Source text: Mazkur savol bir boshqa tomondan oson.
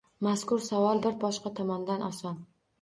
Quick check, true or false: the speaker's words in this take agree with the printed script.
true